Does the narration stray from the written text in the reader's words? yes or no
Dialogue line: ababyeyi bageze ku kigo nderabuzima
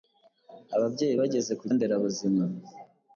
yes